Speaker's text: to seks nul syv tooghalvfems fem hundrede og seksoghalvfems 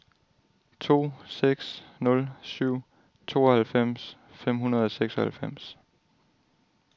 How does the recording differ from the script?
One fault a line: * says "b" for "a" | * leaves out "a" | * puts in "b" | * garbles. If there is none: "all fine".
all fine